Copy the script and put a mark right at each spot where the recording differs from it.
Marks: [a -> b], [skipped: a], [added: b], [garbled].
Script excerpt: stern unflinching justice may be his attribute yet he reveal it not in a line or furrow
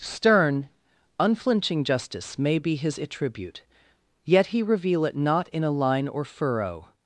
stern unflinching justice may be his attribute yet he reveal it not in a line or furrow